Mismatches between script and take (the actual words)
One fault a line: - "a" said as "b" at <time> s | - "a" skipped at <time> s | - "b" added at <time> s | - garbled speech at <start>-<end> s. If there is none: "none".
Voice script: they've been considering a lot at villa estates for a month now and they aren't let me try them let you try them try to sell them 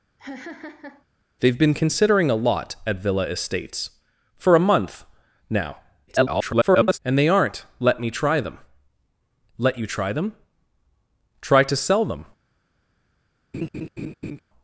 - garbled speech at 6.1-7.0 s